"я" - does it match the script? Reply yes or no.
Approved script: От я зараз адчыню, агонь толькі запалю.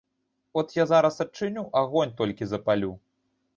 yes